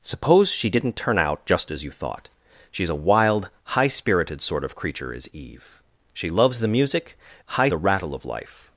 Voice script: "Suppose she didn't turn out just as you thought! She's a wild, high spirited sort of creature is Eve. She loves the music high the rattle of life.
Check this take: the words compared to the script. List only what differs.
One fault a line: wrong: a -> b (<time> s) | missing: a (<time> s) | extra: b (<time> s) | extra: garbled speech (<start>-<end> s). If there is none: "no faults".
no faults